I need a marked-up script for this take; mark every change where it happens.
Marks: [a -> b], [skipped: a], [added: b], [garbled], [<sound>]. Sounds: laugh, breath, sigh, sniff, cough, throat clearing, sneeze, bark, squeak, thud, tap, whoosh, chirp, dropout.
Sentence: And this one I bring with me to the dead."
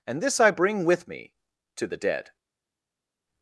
And this [skipped: one] I bring with me to the dead."